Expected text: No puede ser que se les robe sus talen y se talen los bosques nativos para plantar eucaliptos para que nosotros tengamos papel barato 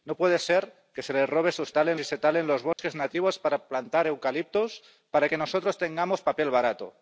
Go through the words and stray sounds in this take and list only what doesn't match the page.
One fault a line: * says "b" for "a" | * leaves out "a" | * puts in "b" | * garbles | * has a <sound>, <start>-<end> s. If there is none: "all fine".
* has a dropout, 2.7-2.8 s